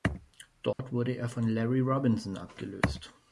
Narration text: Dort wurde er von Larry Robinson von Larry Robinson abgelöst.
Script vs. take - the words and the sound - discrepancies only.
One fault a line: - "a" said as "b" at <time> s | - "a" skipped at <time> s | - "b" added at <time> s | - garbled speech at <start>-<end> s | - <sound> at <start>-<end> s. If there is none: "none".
- dropout at 0.7-0.8 s
- "von Larry Robinson" skipped at 2.4 s